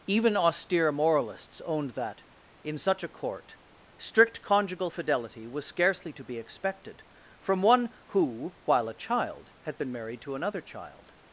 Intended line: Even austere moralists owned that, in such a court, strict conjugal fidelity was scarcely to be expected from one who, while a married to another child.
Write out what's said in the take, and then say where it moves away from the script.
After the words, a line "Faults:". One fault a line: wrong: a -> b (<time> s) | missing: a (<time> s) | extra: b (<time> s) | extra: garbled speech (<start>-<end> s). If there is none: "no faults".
Even austere moralists owned that, in such a court, strict conjugal fidelity was scarcely to be expected from one who, while a child, had been married to another child.
Faults:
extra: child had been (8.9 s)